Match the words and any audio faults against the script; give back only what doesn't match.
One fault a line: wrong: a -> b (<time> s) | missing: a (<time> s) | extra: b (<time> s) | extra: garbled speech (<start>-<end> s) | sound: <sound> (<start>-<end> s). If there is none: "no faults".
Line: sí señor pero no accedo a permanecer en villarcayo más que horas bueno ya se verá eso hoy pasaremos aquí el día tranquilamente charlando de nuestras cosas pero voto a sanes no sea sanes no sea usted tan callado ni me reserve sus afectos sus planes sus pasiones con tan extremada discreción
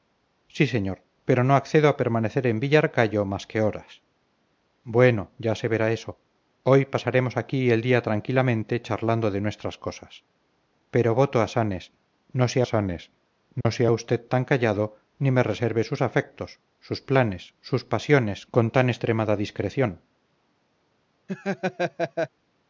sound: dropout (13.6-13.7 s)
sound: laugh (21.3-22.3 s)